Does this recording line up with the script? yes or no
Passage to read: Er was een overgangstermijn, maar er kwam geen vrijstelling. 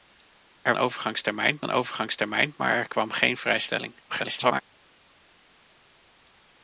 no